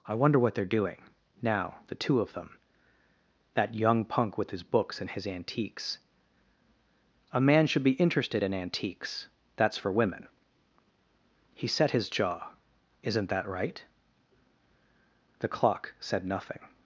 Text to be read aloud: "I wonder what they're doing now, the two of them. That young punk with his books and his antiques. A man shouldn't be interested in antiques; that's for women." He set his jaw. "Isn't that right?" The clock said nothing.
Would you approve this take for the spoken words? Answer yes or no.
no